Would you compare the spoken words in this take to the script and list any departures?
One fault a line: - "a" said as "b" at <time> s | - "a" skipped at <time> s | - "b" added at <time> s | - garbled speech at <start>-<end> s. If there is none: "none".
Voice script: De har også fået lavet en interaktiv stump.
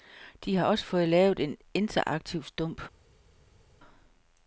none